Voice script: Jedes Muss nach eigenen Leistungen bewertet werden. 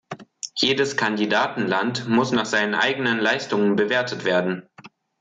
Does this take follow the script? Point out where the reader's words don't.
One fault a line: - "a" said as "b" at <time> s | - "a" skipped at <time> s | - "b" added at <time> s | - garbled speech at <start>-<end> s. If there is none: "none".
- "Kandidatenland" added at 1.0 s
- "seinen" added at 2.5 s